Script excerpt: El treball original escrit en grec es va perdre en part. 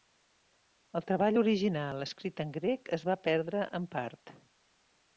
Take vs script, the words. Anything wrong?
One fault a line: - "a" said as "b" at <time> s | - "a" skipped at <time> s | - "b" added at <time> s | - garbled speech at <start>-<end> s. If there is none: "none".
none